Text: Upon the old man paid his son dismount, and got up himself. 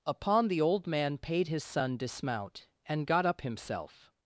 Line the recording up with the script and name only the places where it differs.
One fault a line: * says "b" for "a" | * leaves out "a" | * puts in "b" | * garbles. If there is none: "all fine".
all fine